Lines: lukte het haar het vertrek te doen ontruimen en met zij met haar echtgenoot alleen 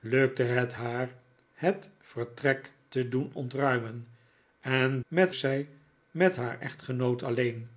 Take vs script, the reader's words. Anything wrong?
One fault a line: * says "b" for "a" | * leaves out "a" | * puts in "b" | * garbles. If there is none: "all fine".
all fine